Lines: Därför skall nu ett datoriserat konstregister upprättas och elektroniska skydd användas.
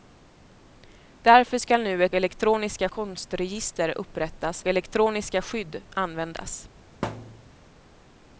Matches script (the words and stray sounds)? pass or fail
fail